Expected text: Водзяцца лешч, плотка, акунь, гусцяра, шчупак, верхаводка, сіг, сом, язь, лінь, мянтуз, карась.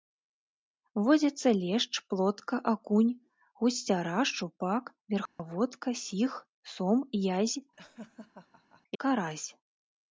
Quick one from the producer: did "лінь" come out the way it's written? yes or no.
no